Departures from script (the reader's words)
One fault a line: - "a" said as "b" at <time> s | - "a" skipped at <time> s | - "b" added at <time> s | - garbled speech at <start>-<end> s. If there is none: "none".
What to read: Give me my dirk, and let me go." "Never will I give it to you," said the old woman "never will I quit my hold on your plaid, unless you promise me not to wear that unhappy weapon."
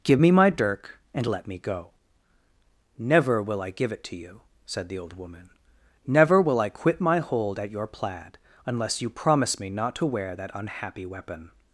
- "on" said as "at" at 7.6 s